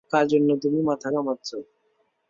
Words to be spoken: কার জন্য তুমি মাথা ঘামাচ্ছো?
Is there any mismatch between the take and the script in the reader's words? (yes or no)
no